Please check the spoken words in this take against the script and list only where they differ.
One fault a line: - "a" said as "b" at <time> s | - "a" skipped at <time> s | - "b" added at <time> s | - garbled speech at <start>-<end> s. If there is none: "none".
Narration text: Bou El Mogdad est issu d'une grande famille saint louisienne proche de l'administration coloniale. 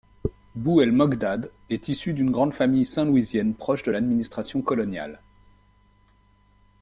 none